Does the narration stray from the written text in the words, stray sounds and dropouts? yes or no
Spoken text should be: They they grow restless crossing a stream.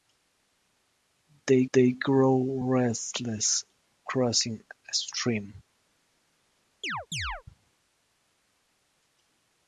yes